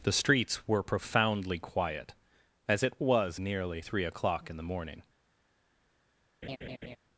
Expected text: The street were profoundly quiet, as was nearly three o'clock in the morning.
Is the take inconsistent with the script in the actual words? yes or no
yes